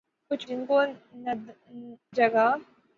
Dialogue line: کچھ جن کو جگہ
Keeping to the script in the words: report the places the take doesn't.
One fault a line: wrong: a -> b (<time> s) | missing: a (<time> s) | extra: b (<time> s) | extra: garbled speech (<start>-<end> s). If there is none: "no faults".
no faults